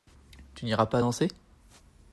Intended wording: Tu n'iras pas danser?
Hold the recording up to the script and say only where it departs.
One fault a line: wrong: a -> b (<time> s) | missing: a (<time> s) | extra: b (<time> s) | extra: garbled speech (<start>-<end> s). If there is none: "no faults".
no faults